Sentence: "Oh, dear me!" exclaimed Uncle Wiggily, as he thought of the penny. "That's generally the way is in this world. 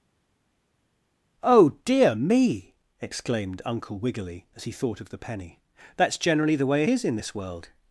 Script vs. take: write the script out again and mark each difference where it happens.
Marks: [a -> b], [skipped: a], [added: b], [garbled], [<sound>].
"Oh, dear me!" exclaimed Uncle Wiggily, as he thought of the penny. "That's generally the way is in this world.